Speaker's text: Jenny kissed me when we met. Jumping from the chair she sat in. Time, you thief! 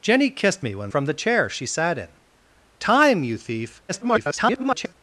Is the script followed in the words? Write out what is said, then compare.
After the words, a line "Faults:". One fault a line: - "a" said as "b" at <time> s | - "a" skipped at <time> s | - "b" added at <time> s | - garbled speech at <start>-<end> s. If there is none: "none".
Jenny kissed me when from the chair she sat in. Time, you thief! [garbled]
Faults:
- "we met Jumping" skipped at 0.9 s
- garbled speech at 3.9-4.9 s